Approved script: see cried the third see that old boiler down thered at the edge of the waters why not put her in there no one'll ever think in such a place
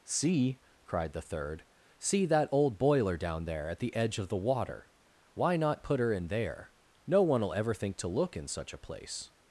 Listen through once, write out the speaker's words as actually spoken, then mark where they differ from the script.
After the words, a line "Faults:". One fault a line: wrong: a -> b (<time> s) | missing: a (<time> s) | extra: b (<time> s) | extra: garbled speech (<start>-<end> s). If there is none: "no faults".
see cried the third see that old boiler down there at the edge of the water why not put her in there no one'll ever think to look in such a place
Faults:
wrong: thered -> there (3.5 s)
wrong: waters -> water (4.4 s)
extra: to look (8.0 s)